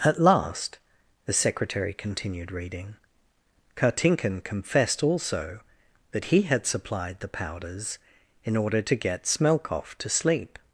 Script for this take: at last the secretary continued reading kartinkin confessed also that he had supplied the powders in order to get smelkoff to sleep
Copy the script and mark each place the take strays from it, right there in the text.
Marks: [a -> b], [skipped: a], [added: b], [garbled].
at last the secretary continued reading kartinkin confessed also that he had supplied the powders in order to get smelkoff to sleep